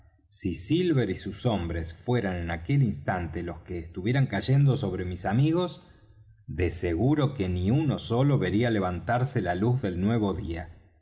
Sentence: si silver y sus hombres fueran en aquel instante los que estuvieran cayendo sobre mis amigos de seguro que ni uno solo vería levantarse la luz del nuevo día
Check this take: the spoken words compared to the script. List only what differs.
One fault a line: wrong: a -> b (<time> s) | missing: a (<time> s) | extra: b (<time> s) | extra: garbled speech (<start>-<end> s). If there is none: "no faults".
no faults